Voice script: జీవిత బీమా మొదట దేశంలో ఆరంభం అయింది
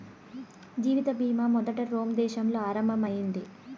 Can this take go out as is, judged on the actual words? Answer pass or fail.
fail